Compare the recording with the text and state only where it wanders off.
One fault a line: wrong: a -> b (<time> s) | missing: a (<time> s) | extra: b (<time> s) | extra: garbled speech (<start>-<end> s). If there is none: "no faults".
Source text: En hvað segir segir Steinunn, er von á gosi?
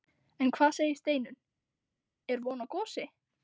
missing: segir (0.9 s)